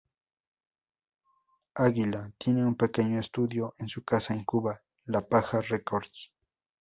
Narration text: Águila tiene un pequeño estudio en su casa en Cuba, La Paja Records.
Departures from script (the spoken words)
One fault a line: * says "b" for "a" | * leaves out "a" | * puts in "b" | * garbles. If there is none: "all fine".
all fine